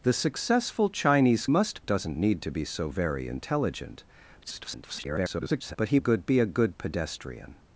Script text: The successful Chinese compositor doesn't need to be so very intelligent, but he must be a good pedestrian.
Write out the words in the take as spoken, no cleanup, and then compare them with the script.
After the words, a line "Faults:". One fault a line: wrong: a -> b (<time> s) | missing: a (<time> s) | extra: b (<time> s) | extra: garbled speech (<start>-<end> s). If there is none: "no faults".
The successful Chinese must doesn't need to be so very intelligent, [garbled] but he good be a good pedestrian.
Faults:
wrong: compositor -> must (1.5 s)
extra: garbled speech (4.4-5.8 s)
wrong: must -> good (6.0 s)